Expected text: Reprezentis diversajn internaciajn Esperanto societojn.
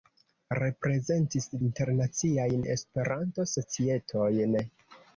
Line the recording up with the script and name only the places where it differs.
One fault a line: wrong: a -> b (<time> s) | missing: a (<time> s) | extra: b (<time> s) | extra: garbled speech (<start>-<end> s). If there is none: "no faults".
missing: diversajn (1.5 s)